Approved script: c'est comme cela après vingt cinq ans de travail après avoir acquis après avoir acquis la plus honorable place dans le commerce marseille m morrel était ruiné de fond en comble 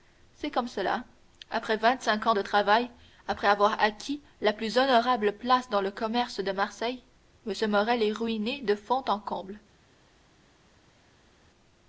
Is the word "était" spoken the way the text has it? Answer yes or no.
no